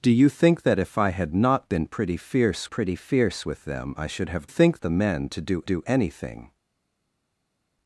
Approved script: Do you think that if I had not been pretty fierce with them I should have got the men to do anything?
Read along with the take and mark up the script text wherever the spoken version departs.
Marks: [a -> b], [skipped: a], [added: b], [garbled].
Do you think that if I had not been pretty fierce [added: pretty fierce] with them I should have [got -> think] the men to do [added: do] anything?